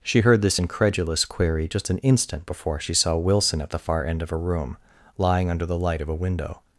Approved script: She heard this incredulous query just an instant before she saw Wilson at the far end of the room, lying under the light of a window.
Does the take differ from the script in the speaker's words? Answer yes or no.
yes